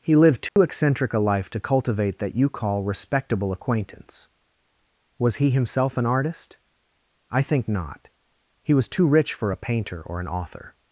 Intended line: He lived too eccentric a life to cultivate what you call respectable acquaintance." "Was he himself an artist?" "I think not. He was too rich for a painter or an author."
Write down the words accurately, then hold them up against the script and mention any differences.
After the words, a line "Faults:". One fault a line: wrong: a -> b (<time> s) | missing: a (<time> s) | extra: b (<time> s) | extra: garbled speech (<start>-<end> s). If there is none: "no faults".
He lived too eccentric a life to cultivate that you call respectable acquaintance." "Was he himself an artist?" "I think not. He was too rich for a painter or an author."
Faults:
wrong: what -> that (2.2 s)